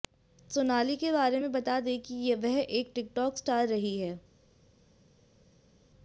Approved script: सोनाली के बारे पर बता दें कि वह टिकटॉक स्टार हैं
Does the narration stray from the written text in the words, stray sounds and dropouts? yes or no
yes